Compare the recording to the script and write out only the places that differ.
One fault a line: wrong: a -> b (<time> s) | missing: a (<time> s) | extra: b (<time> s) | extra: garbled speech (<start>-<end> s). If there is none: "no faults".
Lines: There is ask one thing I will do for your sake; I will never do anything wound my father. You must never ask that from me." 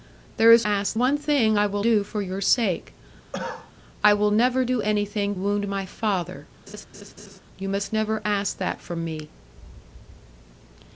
no faults